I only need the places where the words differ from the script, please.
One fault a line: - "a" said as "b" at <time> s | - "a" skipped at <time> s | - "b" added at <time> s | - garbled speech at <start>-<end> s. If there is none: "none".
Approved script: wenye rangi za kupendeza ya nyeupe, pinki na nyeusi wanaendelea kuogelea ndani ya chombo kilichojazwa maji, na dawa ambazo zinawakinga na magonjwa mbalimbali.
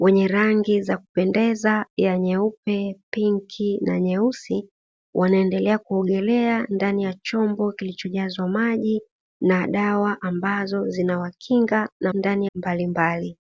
- "magonjwa" said as "ndani" at 12.1 s